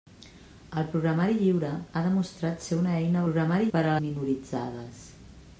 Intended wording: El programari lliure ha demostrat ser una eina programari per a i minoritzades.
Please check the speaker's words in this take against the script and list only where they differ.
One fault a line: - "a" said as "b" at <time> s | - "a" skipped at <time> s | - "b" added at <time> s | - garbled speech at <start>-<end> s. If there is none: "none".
none